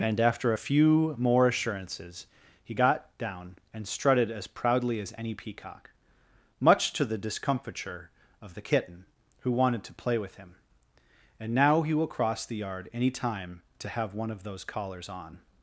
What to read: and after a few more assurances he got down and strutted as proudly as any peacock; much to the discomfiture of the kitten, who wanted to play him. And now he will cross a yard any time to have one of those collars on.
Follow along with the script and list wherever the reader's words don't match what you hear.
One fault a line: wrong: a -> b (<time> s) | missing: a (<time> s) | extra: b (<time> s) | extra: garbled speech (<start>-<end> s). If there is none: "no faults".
extra: with (10.2 s)
wrong: a -> the (12.5 s)